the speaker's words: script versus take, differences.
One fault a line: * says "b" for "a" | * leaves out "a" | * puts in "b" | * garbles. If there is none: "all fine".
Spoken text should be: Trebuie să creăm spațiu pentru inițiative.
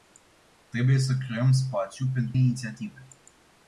all fine